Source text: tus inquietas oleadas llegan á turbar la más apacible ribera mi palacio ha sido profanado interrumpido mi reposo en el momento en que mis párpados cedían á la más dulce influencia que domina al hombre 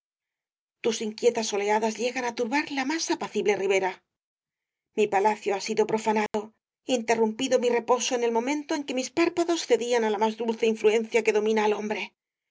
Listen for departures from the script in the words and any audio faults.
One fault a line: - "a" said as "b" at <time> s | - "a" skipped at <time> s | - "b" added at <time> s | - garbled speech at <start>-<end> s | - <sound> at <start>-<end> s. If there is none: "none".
- dropout at 6.3-6.3 s